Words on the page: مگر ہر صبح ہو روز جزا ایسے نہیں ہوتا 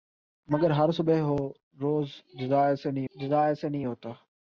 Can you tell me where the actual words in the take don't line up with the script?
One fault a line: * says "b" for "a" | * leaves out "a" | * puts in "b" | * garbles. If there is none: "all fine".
* puts in "جزا ایسے نہیں"